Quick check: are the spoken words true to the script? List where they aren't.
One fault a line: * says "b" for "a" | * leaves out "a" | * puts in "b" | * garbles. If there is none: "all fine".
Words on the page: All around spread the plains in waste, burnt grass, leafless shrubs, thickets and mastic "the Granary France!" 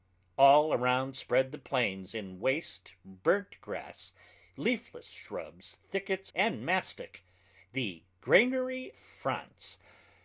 all fine